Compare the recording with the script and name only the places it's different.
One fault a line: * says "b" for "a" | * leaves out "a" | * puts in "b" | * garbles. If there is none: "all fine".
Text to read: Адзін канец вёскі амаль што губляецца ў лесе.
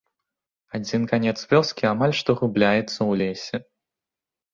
all fine